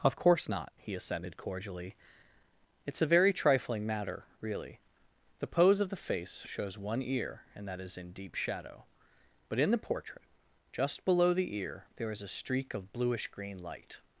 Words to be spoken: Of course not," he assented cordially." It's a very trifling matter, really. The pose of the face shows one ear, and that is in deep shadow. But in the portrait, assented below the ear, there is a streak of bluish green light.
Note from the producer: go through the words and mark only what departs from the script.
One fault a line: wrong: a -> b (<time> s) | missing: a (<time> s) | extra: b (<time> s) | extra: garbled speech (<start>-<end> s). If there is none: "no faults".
wrong: assented -> just (10.7 s)